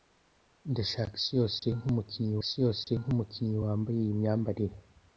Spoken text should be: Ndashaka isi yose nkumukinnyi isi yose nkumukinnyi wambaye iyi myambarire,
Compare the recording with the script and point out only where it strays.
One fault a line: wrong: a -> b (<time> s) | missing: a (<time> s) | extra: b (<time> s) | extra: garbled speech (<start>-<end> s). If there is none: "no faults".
no faults